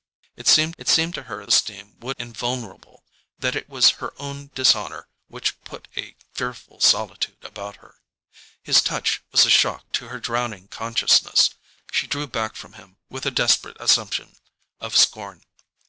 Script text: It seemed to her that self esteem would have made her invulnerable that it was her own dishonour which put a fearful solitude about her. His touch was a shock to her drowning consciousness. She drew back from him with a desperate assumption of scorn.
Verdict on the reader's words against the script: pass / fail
fail